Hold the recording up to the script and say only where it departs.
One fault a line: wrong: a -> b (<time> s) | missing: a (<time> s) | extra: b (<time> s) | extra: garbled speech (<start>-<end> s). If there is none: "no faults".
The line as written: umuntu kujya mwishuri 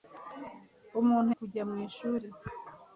no faults